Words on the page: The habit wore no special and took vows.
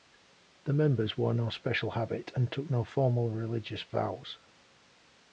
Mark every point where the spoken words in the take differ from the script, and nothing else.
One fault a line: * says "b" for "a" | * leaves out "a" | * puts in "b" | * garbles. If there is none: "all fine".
* says "members" for "habit"
* puts in "habit"
* puts in "no formal religious"